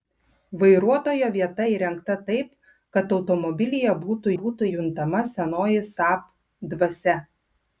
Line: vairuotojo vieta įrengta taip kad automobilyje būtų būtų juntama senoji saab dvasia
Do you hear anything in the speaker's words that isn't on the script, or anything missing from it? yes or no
no